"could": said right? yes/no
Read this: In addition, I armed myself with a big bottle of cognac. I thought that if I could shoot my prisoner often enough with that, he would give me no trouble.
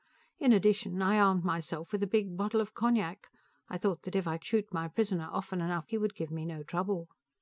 no